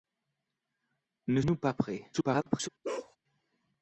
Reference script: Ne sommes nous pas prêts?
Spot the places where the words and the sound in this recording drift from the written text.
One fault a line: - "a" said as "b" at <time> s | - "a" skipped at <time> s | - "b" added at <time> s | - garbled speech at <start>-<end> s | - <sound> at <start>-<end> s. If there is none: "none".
- "sommes" skipped at 1.4 s
- garbled speech at 2.1-2.7 s
- bark at 2.8-3.2 s